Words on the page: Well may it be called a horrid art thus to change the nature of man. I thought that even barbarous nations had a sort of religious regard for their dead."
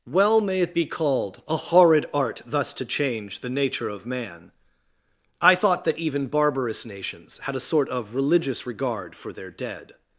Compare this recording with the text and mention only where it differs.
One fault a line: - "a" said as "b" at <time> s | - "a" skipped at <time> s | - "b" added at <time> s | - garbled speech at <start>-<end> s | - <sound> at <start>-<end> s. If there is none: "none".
none